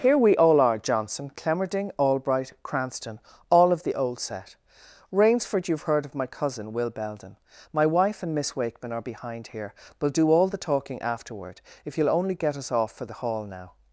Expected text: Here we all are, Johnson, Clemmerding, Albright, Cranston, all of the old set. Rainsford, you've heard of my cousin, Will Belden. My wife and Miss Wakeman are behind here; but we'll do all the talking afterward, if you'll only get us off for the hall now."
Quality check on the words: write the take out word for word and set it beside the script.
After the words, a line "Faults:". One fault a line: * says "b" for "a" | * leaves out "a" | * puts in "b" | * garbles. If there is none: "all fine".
Here we all are, Johnson, Clemmerding, Albright, Cranston, all of the old set. Rainsford, you've heard of my cousin, Will Belden. My wife and Miss Wakeman are behind here; we'll do all the talking afterward, if you'll only get us off for the hall now."
Faults:
* leaves out "but"